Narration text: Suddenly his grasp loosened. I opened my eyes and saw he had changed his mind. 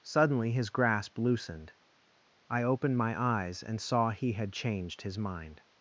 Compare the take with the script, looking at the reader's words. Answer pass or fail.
pass